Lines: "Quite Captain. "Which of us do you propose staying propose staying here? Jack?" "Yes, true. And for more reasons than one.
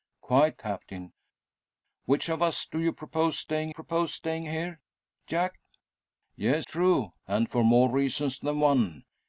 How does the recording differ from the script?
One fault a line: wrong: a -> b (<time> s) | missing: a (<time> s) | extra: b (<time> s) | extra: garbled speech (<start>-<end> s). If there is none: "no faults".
no faults